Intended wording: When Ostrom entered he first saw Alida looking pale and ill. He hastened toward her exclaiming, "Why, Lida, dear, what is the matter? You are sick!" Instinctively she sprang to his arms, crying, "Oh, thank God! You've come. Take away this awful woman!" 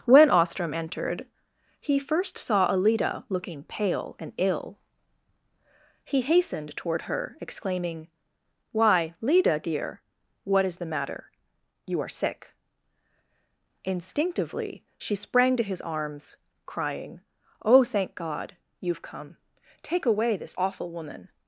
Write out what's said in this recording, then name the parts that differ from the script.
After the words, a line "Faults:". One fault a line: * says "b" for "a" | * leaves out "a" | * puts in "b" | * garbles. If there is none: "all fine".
When Ostrom entered he first saw Alida looking pale and ill. He hastened toward her exclaiming, "Why, Lida, dear, what is the matter? You are sick!" Instinctively she sprang to his arms, crying, "Oh, thank God! You've come. Take away this awful woman!"
Faults:
all fine